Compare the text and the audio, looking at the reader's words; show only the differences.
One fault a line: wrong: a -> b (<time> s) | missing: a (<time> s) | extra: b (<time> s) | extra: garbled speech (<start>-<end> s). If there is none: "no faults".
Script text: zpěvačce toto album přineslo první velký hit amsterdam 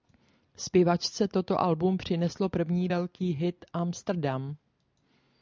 no faults